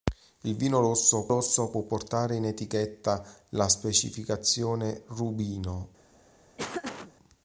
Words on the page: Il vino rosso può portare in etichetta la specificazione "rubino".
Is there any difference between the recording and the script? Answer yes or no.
yes